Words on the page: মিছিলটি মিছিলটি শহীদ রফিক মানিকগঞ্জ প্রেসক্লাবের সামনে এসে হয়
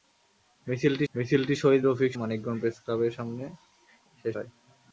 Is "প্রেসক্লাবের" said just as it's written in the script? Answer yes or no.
yes